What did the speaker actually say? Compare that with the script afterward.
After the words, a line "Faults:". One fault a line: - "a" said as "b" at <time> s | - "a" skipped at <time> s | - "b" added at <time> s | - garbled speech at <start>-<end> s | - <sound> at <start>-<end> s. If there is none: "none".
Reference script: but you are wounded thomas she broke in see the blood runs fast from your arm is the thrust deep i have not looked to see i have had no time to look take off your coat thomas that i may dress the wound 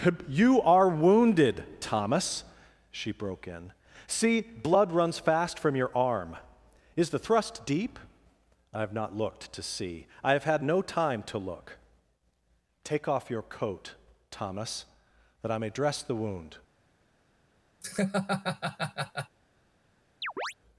you are wounded thomas she broke in see blood runs fast from your arm is the thrust deep i have not looked to see i have had no time to look take off your coat thomas that i may dress the wound
Faults:
- "but" skipped at 0.3 s
- "the" skipped at 4.4 s
- laugh at 17.8-19.4 s
- chirp at 20.2-20.5 s